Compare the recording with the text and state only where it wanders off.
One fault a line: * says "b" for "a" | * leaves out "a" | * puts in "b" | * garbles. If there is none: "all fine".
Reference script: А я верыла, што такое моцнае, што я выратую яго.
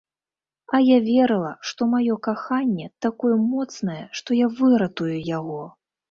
* puts in "маё каханне"